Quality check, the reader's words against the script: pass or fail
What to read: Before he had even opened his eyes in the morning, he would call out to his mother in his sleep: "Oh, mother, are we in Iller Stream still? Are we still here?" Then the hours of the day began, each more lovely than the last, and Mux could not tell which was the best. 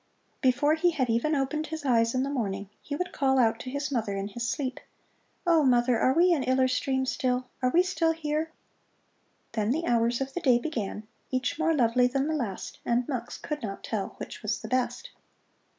pass